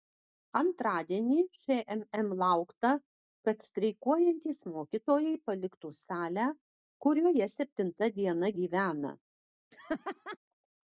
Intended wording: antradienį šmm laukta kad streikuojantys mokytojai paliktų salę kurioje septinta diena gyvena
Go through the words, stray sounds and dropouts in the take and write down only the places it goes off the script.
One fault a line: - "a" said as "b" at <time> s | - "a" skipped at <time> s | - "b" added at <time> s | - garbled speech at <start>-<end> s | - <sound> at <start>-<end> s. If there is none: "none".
- laugh at 9.7-10.4 s